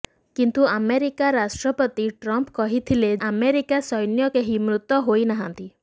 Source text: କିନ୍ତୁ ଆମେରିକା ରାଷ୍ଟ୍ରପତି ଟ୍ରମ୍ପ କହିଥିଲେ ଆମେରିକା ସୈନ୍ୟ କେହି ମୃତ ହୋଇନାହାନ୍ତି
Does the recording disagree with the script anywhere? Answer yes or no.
no